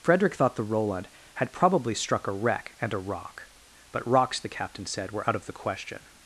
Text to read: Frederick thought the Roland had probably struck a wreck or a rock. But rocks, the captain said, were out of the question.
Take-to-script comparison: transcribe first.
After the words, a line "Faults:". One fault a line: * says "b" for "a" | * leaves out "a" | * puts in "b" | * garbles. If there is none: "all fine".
Frederick thought the Roland had probably struck a wreck and a rock. But rocks, the captain said, were out of the question.
Faults:
* says "and" for "or"